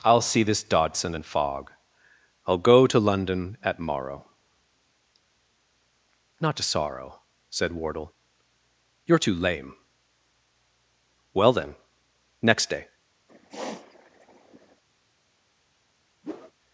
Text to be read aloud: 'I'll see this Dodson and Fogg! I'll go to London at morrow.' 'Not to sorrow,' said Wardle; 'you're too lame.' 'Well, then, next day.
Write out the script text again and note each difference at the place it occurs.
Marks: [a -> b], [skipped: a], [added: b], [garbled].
'I'll see this Dodson and Fogg! I'll go to London at morrow.' 'Not to sorrow,' said Wardle; 'you're too lame.' 'Well, then, next day.